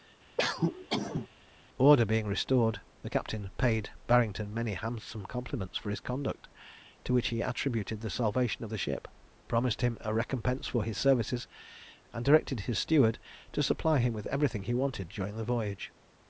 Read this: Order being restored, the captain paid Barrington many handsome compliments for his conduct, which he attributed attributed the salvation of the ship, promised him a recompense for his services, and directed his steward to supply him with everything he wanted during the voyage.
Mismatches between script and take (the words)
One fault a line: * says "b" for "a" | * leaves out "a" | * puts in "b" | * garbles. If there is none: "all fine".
* puts in "to"
* leaves out "attributed"